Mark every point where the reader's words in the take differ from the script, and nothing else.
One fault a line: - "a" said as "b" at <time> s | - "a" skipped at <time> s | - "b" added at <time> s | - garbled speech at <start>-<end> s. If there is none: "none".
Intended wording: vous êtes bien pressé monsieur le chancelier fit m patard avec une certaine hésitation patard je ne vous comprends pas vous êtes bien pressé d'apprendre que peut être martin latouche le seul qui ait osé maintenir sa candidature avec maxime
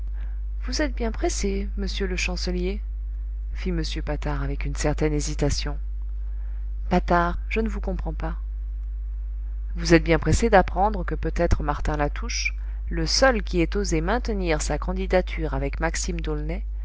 none